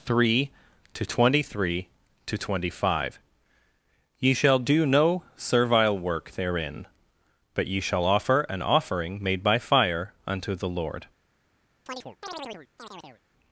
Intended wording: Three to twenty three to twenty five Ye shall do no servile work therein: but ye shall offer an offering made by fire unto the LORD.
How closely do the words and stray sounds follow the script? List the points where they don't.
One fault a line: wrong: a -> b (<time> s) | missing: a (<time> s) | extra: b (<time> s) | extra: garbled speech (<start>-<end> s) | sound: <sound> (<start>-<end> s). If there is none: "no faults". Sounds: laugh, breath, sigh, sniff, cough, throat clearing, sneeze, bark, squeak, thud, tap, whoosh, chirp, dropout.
sound: chirp (11.9-13.2 s)